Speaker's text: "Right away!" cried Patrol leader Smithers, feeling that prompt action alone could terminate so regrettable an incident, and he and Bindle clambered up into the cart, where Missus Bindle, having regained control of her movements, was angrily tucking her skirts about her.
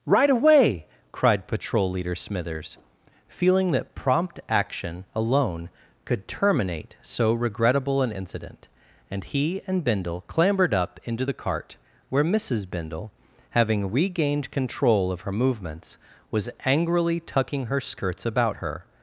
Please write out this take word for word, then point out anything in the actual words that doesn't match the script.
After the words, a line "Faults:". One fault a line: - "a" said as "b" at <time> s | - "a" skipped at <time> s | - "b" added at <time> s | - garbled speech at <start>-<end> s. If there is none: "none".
"Right away!" cried Patrol leader Smithers, feeling that prompt action alone could terminate so regrettable an incident, and he and Bindle clambered up into the cart, where Missus Bindle, having regained control of her movements, was angrily tucking her skirts about her.
Faults:
none